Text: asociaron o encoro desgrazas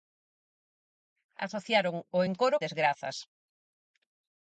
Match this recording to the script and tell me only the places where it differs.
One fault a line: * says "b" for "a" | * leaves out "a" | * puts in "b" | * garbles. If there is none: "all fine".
all fine